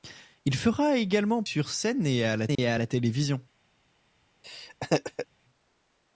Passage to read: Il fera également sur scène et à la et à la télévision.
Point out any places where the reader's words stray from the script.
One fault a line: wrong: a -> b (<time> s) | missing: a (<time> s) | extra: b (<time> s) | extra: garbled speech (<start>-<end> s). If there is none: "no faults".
no faults